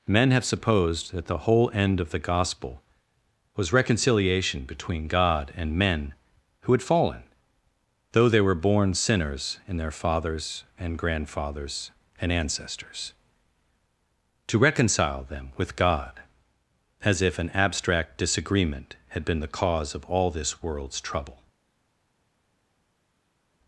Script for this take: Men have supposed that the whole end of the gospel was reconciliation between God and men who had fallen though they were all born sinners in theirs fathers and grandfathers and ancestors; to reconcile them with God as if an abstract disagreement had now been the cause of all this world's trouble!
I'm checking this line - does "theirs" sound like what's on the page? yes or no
no